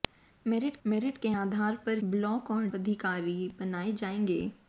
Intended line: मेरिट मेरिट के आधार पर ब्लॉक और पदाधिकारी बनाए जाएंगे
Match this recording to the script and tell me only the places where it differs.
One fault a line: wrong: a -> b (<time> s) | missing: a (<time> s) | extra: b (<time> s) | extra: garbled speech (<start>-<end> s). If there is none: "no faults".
no faults